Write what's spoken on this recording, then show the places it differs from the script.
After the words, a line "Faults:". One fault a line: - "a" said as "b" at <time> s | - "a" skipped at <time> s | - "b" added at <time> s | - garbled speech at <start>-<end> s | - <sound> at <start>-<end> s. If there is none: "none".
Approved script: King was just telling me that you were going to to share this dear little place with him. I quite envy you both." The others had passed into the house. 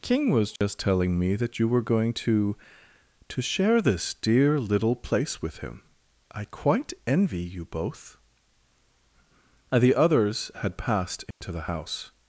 King was just telling me that you were going to to share this dear little place with him. I quite envy you both." The others had passed into the house.
Faults:
- dropout at 0.6-0.6 s
- dropout at 11.3-11.4 s